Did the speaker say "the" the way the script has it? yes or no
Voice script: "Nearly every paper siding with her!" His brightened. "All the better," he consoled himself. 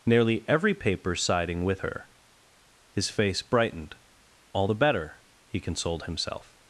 yes